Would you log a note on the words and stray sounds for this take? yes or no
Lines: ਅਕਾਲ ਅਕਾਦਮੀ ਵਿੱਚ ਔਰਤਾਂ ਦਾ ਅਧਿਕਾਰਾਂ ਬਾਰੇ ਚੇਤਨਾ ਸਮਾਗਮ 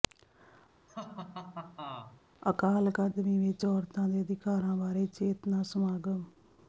yes